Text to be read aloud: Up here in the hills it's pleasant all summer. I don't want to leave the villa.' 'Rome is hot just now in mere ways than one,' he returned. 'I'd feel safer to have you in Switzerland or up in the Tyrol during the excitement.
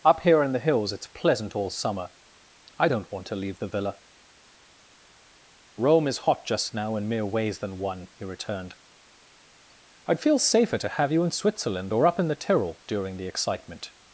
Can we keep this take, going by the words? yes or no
yes